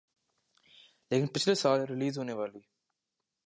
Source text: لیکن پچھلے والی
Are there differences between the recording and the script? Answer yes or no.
yes